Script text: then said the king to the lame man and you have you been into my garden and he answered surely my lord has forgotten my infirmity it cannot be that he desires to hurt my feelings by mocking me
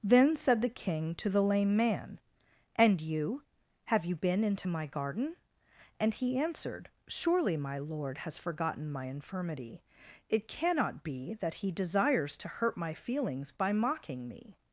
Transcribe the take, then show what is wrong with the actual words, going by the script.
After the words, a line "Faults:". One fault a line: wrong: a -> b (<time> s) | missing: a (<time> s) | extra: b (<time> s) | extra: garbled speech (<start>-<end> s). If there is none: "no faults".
then said the king to the lame man and you have you been into my garden and he answered surely my lord has forgotten my infirmity it cannot be that he desires to hurt my feelings by mocking me
Faults:
no faults